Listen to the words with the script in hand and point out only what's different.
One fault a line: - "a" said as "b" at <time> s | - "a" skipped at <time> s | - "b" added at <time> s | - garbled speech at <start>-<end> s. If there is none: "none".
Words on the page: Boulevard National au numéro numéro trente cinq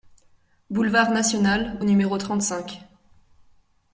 - "numéro" skipped at 2.2 s